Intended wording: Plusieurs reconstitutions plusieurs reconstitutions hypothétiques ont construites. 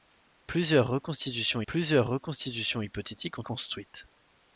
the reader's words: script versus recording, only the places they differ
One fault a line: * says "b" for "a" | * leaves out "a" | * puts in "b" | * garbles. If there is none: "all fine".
all fine